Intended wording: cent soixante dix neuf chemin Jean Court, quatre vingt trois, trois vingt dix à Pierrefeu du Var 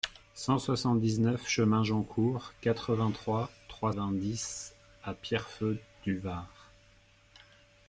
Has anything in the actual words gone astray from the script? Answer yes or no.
no